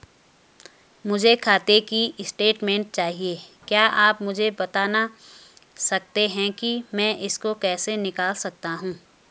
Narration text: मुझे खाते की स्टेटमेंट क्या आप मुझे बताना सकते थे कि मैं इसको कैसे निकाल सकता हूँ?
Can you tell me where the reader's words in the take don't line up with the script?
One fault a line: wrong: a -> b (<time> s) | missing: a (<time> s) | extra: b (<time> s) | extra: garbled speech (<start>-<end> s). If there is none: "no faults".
extra: चाहिए (2.9 s)
wrong: थे -> हैं (6.3 s)